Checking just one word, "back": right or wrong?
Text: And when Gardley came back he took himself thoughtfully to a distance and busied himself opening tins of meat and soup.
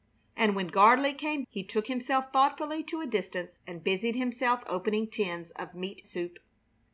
wrong